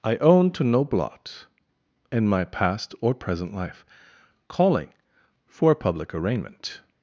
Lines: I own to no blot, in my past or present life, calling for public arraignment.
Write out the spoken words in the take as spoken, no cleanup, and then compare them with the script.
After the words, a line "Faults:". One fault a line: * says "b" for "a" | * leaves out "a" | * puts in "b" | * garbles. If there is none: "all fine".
I own to no blot, in my past or present life, calling for public arraignment.
Faults:
all fine